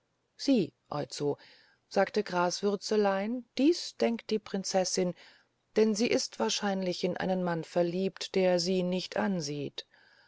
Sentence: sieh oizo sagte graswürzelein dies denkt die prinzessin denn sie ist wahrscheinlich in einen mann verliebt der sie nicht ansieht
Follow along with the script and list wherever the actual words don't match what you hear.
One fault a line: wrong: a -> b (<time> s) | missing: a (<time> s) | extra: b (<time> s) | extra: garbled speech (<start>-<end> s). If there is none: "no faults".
no faults